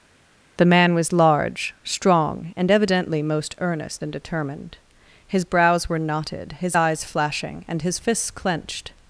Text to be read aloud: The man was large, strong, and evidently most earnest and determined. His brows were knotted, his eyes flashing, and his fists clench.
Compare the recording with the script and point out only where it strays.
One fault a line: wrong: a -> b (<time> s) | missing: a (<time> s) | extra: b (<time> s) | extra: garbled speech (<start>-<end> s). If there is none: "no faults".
wrong: clench -> clenched (8.3 s)